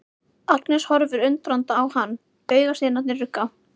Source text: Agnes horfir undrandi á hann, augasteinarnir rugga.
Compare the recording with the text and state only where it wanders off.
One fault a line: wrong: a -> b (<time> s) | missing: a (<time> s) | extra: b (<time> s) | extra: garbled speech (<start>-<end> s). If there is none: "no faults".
no faults